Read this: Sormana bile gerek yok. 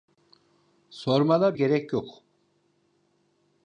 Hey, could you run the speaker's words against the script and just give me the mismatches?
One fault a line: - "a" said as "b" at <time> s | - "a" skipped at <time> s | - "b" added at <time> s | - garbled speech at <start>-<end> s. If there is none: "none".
- "bile" skipped at 1.6 s